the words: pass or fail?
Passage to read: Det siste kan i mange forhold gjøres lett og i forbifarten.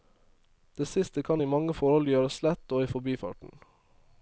pass